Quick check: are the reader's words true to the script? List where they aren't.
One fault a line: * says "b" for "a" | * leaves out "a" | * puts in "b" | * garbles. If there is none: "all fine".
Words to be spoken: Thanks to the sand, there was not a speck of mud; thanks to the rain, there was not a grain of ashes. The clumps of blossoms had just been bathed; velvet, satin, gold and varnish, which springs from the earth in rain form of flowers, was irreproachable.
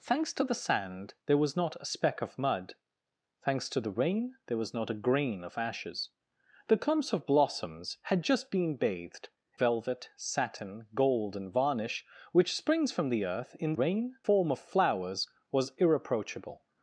all fine